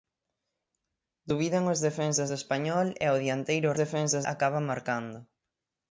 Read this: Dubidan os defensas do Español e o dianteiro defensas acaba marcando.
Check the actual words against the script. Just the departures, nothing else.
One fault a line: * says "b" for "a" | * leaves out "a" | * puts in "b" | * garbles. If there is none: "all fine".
all fine